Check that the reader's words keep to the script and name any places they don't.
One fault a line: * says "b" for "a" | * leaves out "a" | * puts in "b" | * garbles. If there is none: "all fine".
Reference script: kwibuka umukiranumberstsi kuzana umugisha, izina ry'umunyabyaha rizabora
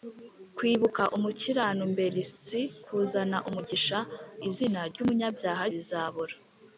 all fine